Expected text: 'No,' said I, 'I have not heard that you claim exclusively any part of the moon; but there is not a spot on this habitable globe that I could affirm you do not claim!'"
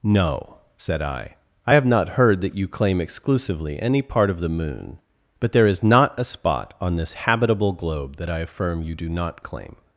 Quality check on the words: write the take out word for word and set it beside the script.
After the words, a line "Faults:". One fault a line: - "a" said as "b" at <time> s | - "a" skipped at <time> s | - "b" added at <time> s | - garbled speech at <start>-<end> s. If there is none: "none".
'No,' said I, 'I have not heard that you claim exclusively any part of the moon; but there is not a spot on this habitable globe that I affirm you do not claim!'"
Faults:
- "could" skipped at 8.4 s